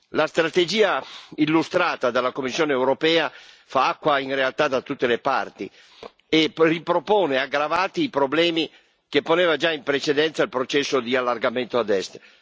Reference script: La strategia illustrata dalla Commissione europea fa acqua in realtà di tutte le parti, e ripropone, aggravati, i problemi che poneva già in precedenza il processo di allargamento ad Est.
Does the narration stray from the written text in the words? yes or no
yes